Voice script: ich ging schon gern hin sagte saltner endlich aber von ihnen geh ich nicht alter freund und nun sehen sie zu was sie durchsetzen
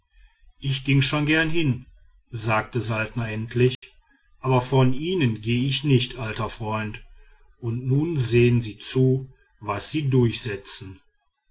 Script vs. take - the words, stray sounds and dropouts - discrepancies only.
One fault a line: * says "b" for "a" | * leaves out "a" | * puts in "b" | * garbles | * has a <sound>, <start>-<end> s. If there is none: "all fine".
* has a dropout, 3.7-3.8 s